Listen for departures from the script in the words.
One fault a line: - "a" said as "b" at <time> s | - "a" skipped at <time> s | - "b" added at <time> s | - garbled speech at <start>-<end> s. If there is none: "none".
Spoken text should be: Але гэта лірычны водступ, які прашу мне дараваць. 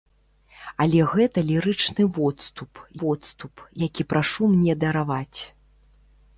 - "водступ" added at 3.0 s